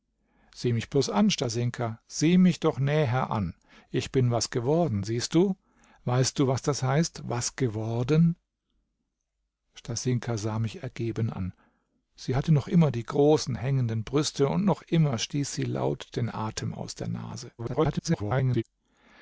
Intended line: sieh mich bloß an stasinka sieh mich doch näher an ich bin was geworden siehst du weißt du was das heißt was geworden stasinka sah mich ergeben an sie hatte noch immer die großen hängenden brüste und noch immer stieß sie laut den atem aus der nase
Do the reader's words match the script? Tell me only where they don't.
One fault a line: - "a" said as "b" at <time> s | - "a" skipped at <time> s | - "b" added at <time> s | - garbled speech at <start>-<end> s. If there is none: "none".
- garbled speech at 17.6-18.6 s